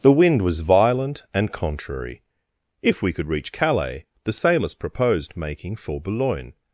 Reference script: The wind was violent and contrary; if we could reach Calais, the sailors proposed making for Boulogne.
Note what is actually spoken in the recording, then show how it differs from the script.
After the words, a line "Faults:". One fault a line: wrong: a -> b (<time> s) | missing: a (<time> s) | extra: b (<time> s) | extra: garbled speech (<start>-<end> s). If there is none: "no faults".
The wind was violent and contrary; if we could reach Calais, the sailors proposed making for Boulogne.
Faults:
no faults